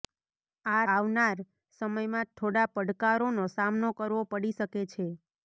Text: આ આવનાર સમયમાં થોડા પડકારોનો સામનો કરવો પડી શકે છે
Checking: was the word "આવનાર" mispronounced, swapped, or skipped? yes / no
no